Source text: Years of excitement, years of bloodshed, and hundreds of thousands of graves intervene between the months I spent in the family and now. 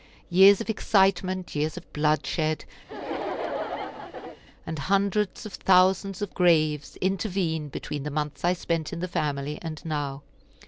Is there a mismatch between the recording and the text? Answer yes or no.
no